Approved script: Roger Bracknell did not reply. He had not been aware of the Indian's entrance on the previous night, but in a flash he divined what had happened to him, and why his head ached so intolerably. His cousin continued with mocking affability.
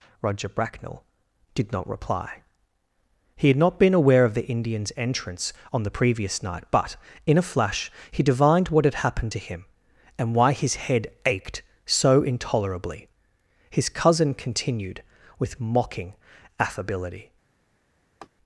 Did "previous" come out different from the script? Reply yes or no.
no